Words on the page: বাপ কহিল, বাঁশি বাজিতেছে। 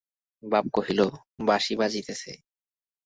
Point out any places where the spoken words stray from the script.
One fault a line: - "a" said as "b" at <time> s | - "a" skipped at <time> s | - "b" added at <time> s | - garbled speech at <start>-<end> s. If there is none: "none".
none